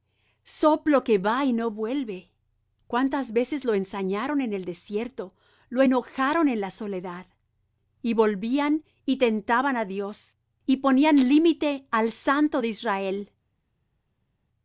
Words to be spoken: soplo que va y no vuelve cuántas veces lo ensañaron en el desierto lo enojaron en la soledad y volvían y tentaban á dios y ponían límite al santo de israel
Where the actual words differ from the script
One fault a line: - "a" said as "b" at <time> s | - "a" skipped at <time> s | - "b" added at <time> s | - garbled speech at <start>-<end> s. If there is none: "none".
none